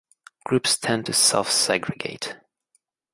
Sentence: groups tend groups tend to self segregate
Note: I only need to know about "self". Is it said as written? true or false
true